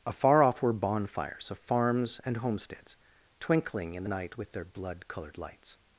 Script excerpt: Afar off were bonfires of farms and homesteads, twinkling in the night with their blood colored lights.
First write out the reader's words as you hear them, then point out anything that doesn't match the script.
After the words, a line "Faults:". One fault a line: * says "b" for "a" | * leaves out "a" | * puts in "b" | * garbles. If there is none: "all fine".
Afar off were bonfires of farms and homesteads, twinkling in the night with their blood colored lights.
Faults:
all fine